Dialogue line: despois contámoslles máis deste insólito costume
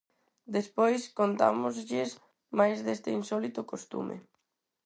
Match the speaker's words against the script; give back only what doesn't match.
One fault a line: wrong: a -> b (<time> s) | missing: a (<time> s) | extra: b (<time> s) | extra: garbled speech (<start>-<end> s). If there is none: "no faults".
no faults